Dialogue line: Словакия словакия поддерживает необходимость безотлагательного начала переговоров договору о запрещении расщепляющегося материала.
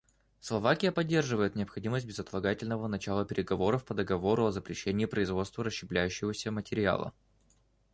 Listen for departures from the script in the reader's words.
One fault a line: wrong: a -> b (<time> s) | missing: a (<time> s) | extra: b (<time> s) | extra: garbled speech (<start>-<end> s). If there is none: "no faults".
missing: словакия (0.9 s)
extra: по (3.8 s)
extra: производства (5.1 s)